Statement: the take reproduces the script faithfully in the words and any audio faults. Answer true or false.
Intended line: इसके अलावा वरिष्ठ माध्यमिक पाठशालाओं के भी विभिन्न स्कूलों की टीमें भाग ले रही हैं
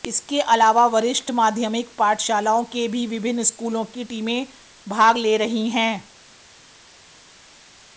true